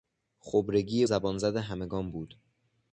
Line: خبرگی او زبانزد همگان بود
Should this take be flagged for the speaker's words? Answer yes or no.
yes